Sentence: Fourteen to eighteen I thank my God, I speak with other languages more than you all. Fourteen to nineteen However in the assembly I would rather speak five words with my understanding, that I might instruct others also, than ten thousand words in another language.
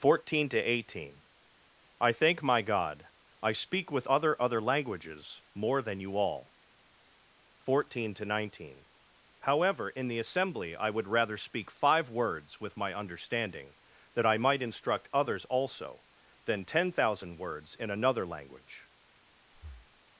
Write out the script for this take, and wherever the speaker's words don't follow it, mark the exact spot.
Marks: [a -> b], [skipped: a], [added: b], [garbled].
Fourteen to eighteen I thank my God, I speak with other [added: other] languages more than you all. Fourteen to nineteen However in the assembly I would rather speak five words with my understanding, that I might instruct others also, than ten thousand words in another language.